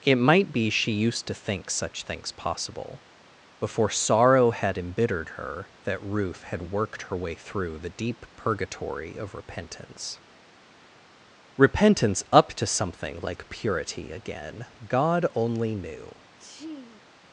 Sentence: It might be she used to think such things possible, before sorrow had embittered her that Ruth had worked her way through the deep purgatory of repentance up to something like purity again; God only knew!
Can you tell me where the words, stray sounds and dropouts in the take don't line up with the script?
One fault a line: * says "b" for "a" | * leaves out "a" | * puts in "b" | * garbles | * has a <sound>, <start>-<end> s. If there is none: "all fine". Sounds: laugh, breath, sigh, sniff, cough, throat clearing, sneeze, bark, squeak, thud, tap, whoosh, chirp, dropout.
* puts in "repentance"
* has a sneeze, 16.4-17.0 s